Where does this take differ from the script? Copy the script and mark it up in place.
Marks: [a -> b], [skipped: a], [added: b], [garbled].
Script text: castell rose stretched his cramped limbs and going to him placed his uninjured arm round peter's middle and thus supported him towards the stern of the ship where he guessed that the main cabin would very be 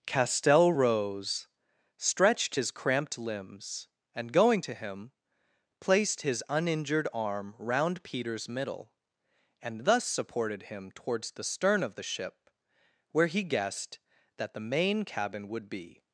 castell rose stretched his cramped limbs and going to him placed his uninjured arm round peter's middle and thus supported him towards the stern of the ship where he guessed that the main cabin would [skipped: very] be